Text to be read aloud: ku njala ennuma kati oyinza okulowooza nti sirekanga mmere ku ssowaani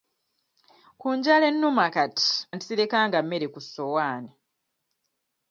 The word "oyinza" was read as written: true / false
false